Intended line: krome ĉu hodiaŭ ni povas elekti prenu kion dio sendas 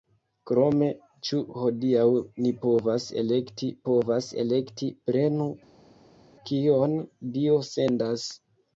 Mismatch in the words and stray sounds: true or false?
true